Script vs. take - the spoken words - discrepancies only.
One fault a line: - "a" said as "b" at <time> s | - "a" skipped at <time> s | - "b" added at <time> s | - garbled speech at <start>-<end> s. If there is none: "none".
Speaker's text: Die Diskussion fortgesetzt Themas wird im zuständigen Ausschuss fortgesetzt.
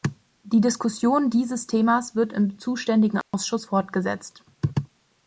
- "fortgesetzt" said as "dieses" at 1.3 s